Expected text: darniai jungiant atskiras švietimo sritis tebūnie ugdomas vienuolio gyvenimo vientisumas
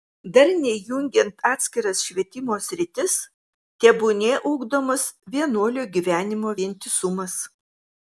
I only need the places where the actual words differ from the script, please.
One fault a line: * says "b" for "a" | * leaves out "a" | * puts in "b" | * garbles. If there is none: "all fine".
all fine